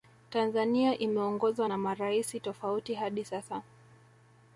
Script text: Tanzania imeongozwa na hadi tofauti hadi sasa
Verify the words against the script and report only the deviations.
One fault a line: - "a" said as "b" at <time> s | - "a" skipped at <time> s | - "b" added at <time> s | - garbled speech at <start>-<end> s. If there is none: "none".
- "hadi" said as "maraisi" at 1.8 s